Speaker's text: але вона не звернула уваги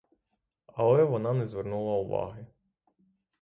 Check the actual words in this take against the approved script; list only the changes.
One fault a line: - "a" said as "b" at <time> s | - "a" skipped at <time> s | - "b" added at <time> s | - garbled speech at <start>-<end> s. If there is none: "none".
none